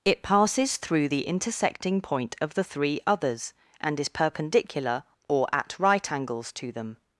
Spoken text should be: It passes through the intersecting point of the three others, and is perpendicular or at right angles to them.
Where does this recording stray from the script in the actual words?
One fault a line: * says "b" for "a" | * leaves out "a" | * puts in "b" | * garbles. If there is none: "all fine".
all fine